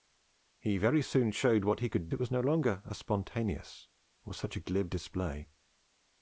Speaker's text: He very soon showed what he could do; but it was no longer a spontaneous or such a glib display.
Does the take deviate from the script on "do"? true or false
true